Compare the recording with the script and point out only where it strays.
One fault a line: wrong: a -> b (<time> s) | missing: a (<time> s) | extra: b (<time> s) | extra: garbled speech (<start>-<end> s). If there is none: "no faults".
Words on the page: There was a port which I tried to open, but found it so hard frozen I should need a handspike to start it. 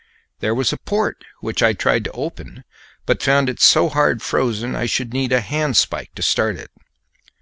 no faults